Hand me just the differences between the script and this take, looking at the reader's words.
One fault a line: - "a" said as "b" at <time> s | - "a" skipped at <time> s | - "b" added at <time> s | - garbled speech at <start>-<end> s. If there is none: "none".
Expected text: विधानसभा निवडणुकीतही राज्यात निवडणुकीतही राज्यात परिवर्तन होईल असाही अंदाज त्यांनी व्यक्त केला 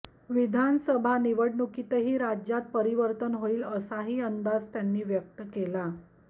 - "निवडणुकीतही राज्यात" skipped at 2.7 s